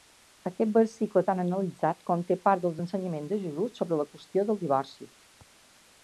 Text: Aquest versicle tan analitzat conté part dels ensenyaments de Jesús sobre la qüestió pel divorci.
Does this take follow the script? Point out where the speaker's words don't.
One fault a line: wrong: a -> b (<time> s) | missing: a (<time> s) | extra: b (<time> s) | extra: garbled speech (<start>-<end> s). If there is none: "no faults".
wrong: pel -> del (4.5 s)